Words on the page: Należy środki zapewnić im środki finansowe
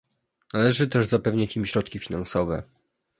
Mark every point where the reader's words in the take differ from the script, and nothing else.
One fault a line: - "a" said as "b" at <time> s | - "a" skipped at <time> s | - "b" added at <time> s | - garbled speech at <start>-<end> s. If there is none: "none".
- "środki" said as "też" at 0.9 s